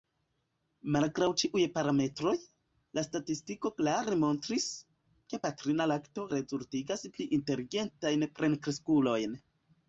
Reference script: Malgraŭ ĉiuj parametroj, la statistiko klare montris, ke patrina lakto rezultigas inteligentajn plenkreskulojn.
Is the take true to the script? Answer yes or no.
no